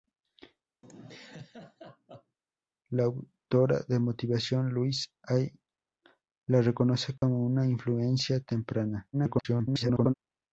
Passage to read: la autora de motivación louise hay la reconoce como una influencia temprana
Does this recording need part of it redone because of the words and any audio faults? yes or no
yes